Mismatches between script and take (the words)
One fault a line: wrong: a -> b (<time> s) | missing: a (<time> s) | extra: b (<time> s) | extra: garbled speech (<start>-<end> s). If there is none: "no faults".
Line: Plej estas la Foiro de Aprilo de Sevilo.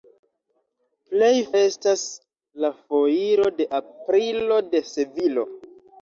no faults